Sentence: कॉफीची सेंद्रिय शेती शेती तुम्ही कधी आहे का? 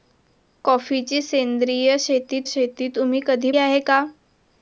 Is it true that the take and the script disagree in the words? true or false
false